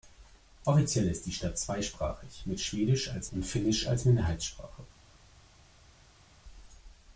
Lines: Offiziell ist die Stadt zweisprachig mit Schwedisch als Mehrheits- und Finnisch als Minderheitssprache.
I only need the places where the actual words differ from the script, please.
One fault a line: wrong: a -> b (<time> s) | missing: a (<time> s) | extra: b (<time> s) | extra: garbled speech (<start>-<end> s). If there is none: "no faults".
missing: Mehrheits (3.3 s)